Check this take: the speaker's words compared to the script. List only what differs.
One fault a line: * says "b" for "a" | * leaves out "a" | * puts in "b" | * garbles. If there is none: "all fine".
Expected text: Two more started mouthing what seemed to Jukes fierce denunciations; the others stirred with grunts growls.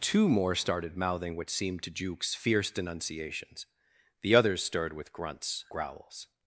all fine